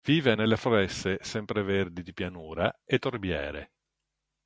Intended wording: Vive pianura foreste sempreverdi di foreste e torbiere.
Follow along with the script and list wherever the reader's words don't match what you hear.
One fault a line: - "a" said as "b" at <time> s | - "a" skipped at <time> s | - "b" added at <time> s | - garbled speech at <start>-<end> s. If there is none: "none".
- "pianura" said as "nelle" at 0.3 s
- "foreste" said as "pianura" at 2.1 s